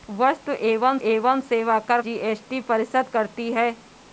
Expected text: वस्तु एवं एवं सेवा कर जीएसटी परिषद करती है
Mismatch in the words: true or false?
false